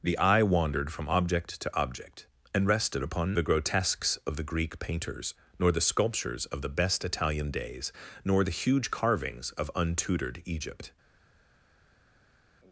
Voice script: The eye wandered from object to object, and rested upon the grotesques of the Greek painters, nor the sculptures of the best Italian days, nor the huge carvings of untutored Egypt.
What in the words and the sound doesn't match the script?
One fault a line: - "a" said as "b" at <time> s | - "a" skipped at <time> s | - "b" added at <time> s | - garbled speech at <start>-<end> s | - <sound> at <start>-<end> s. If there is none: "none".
none